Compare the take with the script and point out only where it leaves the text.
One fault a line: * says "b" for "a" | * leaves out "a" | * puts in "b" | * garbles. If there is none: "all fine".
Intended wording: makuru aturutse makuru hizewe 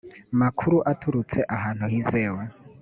* says "ahantu" for "makuru"